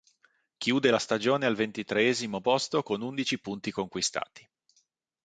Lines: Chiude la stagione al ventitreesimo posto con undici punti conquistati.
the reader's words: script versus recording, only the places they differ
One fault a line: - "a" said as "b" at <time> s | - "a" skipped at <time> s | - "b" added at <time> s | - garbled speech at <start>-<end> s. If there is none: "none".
none